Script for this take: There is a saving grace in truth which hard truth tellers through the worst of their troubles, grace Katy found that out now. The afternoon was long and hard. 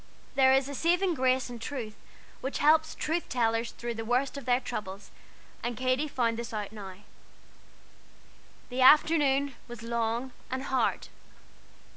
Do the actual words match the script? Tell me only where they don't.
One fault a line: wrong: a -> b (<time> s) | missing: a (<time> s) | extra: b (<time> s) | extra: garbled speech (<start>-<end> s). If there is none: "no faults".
wrong: hard -> helps (2.6 s)
wrong: grace -> and (5.6 s)
wrong: that -> this (6.4 s)